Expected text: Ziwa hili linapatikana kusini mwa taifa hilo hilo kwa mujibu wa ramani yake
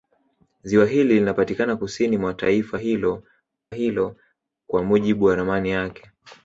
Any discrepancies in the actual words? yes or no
no